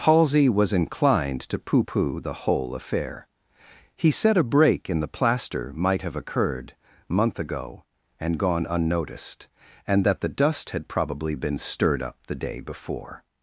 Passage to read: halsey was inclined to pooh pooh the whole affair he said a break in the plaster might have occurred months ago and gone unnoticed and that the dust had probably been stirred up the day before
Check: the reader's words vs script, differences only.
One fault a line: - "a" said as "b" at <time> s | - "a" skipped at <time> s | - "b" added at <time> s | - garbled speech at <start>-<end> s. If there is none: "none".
- "months" said as "month" at 7.1 s